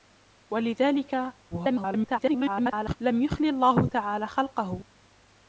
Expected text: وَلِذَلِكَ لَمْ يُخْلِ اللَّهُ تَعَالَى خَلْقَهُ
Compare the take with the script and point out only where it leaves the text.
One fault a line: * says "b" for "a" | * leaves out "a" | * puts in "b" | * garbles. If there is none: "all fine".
* garbles